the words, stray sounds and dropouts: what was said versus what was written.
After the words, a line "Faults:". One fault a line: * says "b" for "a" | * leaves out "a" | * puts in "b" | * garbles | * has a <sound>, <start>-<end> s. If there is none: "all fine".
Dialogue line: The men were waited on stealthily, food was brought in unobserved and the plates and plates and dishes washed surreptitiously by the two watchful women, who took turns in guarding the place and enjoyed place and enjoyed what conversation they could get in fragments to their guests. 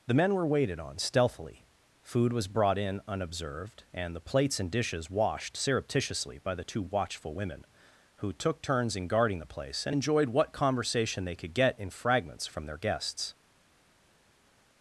The men were waited on stealthily, food was brought in unobserved and the plates and dishes washed surreptitiously by the two watchful women, who took turns in guarding the place and enjoyed what conversation they could get in fragments from their guests.
Faults:
* leaves out "plates and"
* leaves out "place and enjoyed"
* says "from" for "to"